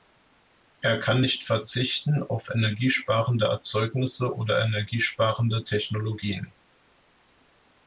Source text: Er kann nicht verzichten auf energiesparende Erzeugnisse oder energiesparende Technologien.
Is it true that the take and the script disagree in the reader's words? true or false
false